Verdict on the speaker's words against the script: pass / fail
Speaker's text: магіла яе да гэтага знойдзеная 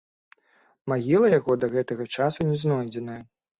fail